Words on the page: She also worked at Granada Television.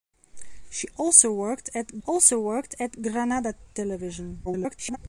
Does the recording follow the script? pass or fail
fail